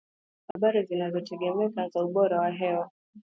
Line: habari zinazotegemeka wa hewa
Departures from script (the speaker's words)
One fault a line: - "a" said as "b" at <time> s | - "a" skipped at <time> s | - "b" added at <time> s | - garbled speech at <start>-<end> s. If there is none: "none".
- "za ubora" added at 1.9 s